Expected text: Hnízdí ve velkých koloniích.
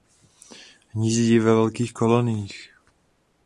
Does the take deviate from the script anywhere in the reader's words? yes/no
no